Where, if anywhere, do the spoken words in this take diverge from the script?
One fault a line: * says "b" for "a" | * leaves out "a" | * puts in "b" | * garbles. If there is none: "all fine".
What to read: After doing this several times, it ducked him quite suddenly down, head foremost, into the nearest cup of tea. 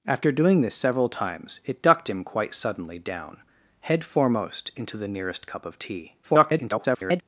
* garbles